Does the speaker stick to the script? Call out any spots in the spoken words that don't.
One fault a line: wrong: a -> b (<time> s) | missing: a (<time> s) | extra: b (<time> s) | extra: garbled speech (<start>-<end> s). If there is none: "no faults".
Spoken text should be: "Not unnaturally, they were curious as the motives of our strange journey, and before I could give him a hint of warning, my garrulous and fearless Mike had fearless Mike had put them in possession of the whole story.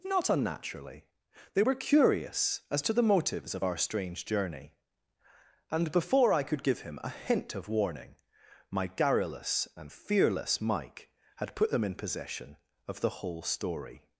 extra: to (2.8 s)
missing: fearless Mike had (11.6 s)